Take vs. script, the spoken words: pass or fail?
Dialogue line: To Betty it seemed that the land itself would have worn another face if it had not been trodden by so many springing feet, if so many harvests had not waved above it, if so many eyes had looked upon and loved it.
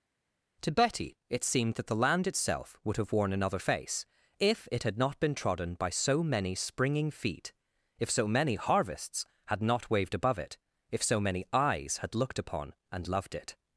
pass